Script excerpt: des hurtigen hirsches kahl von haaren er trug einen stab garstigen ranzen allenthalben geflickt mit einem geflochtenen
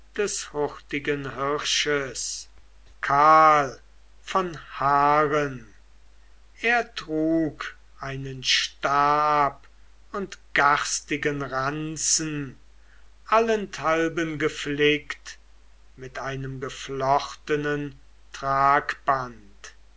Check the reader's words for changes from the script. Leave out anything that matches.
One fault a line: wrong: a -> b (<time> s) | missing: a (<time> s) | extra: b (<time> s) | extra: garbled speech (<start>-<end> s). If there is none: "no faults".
extra: und (10.1 s)